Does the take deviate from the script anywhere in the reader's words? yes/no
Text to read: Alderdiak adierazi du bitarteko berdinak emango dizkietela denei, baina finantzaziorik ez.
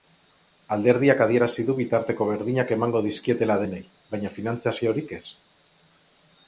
no